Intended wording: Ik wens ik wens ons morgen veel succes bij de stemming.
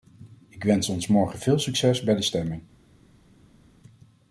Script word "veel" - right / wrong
right